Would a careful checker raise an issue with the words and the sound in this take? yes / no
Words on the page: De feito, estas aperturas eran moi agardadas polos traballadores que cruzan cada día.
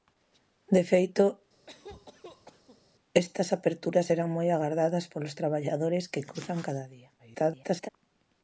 yes